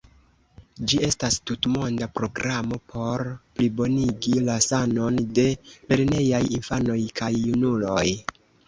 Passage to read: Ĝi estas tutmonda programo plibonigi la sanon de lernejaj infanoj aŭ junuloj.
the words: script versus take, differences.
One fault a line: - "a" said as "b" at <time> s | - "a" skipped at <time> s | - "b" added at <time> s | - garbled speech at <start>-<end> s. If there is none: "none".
- "por" added at 3.0 s
- "aŭ" said as "kaj" at 7.2 s